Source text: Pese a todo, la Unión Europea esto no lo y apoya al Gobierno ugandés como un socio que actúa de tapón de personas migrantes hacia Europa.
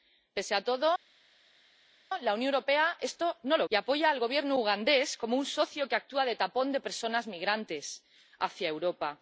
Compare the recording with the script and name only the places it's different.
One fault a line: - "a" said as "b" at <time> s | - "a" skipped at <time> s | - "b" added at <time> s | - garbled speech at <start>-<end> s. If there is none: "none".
none